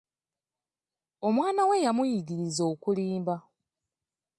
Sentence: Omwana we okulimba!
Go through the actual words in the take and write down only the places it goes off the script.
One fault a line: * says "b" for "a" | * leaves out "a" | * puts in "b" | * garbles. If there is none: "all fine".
* puts in "yamuyigiriza"